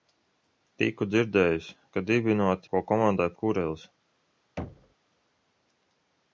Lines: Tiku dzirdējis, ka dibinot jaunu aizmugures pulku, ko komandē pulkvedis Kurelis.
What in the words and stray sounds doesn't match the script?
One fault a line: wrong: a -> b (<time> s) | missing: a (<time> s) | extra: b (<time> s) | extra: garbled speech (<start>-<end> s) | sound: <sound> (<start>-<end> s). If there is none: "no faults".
missing: jaunu aizmugures pulku (2.7 s)
missing: pulkvedis (3.3 s)
sound: thud (4.6-4.9 s)